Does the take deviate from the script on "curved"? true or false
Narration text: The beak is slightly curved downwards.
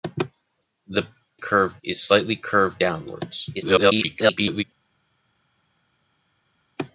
false